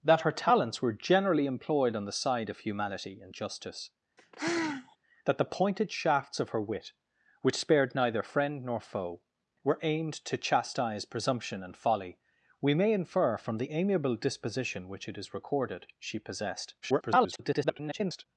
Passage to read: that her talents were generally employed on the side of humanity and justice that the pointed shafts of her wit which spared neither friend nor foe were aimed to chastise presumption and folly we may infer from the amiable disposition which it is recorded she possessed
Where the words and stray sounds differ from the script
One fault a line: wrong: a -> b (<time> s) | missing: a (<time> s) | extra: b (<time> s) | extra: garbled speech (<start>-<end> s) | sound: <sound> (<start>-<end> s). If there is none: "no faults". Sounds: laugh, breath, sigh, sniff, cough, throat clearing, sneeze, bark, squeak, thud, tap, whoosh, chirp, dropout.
sound: sigh (4.2-5.0 s)
extra: garbled speech (16.8-18.3 s)